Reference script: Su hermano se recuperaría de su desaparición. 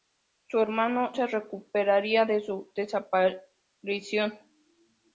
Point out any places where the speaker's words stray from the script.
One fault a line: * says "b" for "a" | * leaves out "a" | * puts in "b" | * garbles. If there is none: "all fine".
all fine